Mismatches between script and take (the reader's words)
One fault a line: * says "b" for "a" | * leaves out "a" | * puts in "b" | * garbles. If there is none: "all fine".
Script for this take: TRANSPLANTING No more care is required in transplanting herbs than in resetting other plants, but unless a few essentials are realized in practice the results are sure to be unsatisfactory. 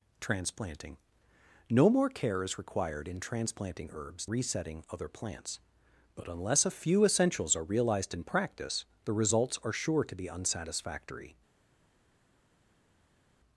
* leaves out "than in"